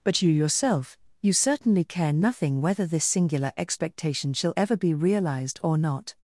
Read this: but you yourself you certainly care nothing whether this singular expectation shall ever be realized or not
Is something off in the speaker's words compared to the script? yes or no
no